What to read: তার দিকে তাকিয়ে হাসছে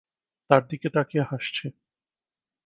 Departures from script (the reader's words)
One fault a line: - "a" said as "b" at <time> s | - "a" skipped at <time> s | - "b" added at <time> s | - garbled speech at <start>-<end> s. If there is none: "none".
none